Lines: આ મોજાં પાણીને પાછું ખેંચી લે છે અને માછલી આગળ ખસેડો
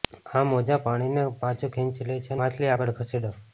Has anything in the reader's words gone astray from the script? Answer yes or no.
yes